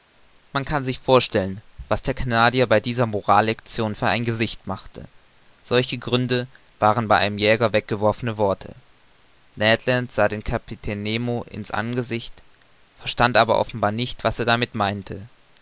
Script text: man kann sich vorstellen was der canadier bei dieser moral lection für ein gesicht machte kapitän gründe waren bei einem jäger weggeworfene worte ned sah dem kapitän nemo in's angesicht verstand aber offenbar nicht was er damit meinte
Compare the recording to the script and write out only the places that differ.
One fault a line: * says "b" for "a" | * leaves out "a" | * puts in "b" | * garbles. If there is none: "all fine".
* says "solche" for "kapitän"
* puts in "land"